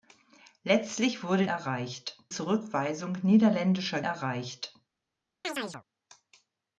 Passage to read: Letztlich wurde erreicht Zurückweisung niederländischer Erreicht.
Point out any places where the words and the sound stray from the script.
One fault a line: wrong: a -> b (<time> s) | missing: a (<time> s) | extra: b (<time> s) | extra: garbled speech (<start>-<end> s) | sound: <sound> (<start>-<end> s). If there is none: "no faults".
sound: chirp (5.4-5.8 s)